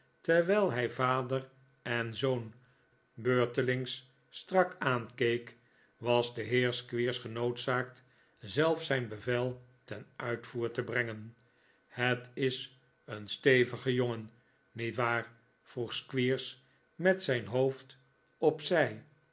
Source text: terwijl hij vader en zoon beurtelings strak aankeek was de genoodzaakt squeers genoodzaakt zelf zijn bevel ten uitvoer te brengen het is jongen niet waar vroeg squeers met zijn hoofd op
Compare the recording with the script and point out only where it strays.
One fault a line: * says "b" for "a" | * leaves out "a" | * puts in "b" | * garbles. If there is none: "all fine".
* says "heer" for "genoodzaakt"
* puts in "een stevige"